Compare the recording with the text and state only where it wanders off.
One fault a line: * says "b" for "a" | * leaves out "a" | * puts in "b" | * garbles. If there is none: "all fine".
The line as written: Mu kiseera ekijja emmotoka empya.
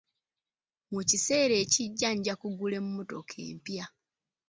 * puts in "nja kugula"